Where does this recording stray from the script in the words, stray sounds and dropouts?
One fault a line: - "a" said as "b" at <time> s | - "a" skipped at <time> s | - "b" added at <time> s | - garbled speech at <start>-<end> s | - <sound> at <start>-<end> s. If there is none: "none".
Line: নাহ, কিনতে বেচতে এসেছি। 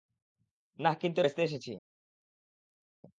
none